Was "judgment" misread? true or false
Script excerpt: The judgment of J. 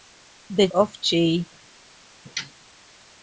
true